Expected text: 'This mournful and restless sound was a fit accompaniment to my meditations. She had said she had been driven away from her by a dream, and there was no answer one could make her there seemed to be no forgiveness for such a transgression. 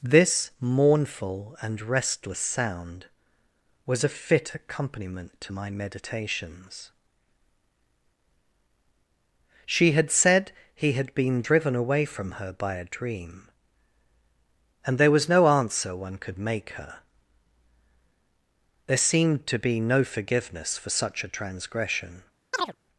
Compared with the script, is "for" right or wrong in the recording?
right